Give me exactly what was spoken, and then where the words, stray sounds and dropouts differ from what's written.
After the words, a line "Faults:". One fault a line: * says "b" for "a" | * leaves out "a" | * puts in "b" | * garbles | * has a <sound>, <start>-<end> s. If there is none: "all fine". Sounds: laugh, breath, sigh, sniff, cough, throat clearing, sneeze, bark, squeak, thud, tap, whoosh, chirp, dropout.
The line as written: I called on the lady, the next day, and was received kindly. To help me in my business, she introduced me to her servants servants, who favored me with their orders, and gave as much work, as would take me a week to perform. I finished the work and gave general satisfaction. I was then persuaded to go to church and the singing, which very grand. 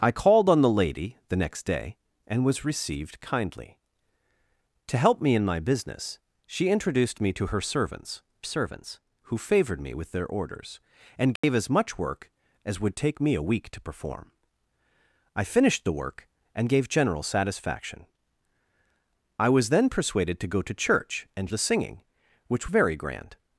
I called on the lady, the next day, and was received kindly. To help me in my business, she introduced me to her servants servants, who favored me with their orders, and gave as much work, as would take me a week to perform. I finished the work and gave general satisfaction. I was then persuaded to go to church and the singing, which very grand.
Faults:
* has a dropout, 11.4-11.4 s